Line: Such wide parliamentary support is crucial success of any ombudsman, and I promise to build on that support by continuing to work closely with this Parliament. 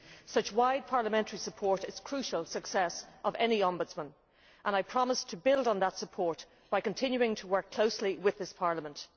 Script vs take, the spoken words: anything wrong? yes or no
no